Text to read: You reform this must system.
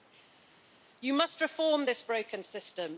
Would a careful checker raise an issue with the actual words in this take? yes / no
yes